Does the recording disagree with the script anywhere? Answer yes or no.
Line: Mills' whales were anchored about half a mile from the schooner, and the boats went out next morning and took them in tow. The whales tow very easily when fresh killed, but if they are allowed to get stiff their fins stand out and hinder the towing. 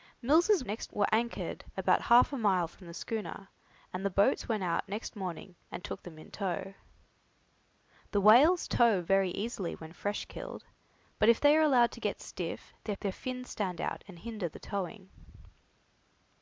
yes